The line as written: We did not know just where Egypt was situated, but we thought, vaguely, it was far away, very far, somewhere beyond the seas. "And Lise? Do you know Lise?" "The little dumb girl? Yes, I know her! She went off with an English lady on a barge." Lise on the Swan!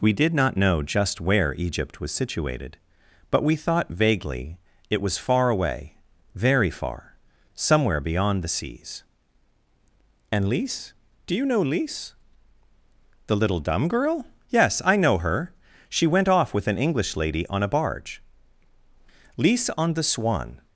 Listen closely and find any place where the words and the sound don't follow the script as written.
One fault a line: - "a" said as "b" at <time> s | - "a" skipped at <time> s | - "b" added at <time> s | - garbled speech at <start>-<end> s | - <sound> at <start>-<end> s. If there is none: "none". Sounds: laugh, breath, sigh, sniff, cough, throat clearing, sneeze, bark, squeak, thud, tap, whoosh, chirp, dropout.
none